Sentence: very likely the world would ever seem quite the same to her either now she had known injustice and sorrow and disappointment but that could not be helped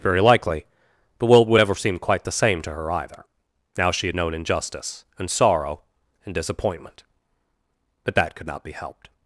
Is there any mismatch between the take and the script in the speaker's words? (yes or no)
no